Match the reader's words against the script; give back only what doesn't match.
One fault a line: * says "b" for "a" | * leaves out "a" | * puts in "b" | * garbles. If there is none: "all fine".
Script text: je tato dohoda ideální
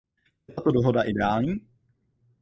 all fine